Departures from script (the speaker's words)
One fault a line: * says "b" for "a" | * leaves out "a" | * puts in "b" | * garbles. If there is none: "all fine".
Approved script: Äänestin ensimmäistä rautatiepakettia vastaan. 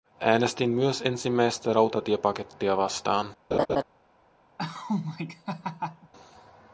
* puts in "myös"